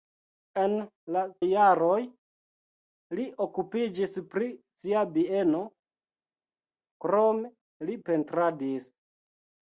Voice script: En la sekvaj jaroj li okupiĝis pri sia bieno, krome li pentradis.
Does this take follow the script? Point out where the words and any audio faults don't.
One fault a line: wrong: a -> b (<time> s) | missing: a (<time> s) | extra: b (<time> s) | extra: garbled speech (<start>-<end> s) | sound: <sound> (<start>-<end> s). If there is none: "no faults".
missing: sekvaj (1.2 s)